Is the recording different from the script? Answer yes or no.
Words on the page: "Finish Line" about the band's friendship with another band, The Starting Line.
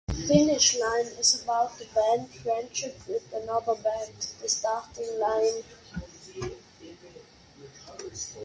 yes